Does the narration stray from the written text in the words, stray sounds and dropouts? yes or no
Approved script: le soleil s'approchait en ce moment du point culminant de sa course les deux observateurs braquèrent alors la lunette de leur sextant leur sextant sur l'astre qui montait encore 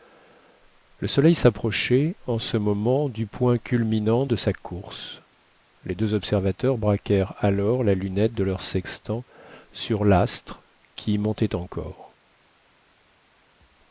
yes